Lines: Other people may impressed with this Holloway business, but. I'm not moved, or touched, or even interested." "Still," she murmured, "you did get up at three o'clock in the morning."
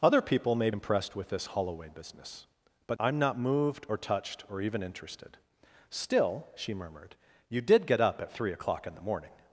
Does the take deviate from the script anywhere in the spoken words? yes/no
no